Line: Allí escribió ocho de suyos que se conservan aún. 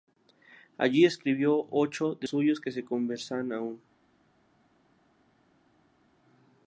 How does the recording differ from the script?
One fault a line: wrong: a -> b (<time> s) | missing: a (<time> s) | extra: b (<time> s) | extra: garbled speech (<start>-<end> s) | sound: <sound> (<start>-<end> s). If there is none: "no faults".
no faults